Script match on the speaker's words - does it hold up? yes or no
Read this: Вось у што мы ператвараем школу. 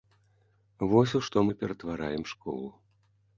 yes